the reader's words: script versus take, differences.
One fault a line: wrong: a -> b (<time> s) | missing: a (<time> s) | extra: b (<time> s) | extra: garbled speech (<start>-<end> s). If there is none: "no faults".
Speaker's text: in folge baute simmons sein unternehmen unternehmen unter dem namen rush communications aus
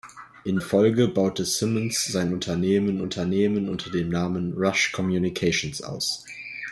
no faults